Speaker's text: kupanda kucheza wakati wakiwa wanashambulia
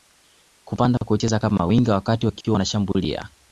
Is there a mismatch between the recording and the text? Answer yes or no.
yes